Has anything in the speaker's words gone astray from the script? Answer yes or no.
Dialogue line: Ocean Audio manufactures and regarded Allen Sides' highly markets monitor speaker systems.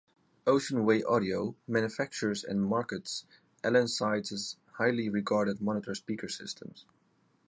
yes